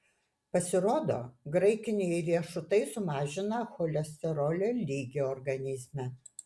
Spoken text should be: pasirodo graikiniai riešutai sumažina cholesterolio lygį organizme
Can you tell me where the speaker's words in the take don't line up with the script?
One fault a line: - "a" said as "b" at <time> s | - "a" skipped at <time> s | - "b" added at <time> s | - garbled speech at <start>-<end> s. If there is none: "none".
none